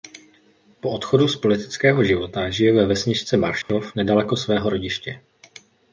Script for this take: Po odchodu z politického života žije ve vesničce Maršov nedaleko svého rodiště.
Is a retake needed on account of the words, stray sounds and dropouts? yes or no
yes